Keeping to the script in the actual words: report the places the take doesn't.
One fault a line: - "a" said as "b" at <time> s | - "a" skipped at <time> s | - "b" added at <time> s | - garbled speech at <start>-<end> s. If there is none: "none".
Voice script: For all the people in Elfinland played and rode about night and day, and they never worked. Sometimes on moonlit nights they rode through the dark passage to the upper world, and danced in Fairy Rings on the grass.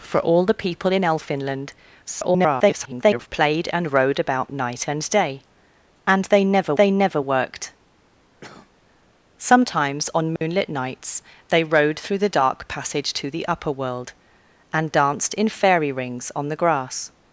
- garbled speech at 2.0-3.3 s
- "they never" added at 6.7 s